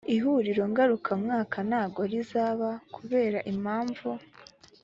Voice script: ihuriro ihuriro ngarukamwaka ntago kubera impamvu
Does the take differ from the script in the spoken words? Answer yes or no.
yes